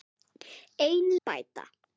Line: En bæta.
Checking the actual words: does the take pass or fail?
pass